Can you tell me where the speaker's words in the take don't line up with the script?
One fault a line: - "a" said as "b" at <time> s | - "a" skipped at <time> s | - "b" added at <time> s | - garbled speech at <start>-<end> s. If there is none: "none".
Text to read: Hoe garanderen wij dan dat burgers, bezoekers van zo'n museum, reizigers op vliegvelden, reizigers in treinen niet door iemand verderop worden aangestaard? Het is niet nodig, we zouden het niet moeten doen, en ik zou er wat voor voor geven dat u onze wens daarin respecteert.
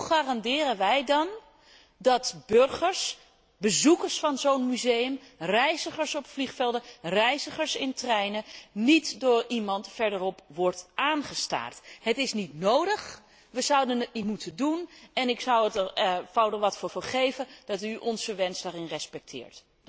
none